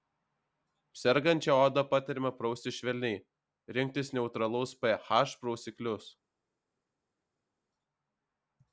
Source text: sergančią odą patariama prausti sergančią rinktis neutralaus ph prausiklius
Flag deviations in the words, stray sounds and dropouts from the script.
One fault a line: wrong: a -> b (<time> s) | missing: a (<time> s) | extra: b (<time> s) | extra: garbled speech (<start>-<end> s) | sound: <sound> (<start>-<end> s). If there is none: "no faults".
wrong: sergančią -> švelniai (2.8 s)